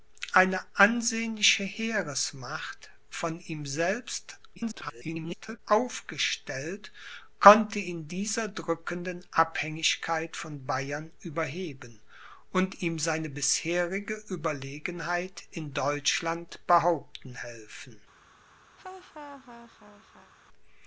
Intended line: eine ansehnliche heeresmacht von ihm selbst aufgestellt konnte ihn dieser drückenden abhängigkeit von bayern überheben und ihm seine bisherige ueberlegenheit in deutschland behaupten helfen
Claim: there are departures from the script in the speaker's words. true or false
true